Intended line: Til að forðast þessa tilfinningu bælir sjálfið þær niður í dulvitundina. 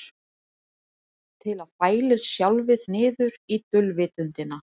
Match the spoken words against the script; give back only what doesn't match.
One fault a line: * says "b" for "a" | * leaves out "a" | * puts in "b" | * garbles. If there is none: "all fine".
* leaves out "forðast þessa tilfinningu"
* leaves out "þær"